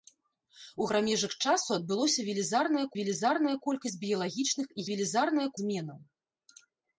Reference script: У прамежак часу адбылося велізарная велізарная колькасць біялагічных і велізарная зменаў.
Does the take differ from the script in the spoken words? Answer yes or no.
no